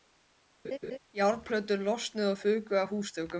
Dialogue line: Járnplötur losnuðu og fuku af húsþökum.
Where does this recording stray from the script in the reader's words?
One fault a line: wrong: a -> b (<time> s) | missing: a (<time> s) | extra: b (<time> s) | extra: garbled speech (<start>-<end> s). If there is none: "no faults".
no faults